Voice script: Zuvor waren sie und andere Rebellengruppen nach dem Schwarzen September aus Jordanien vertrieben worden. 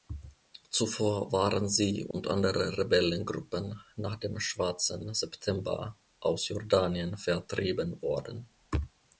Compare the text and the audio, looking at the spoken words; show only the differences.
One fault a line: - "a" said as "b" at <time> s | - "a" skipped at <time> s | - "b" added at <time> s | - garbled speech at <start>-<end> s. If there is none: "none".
none